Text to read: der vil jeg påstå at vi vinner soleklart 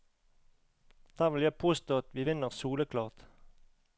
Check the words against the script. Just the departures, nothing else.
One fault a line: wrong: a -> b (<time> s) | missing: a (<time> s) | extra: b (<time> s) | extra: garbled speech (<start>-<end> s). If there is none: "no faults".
no faults